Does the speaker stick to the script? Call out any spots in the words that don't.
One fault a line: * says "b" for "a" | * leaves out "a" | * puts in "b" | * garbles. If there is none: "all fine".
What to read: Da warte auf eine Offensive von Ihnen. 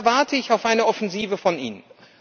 * puts in "ich"